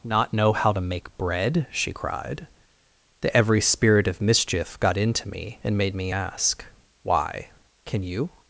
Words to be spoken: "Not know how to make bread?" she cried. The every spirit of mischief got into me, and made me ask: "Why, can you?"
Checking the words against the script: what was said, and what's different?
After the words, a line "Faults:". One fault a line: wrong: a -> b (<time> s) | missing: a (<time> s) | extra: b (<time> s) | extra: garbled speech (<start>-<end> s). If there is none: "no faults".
"Not know how to make bread?" she cried. The every spirit of mischief got into me, and made me ask: "Why, can you?"
Faults:
no faults